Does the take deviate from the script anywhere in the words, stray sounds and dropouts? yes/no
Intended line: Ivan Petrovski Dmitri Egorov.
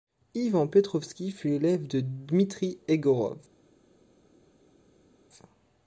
yes